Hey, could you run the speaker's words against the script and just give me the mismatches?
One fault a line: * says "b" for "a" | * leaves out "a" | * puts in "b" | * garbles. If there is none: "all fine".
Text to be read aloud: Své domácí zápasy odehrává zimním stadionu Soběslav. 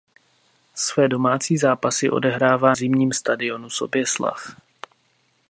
all fine